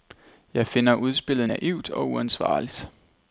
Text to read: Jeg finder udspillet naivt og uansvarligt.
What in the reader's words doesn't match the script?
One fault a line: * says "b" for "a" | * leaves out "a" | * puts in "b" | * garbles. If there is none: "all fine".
all fine